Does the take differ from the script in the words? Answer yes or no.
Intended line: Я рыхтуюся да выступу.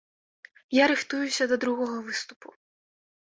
yes